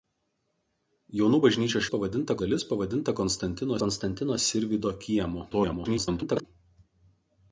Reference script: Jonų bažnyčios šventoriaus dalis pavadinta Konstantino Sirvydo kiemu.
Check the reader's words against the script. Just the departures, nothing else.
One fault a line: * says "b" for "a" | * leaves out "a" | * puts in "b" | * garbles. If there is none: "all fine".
* says "pavadinta" for "šventoriaus"
* puts in "Konstantino"
* garbles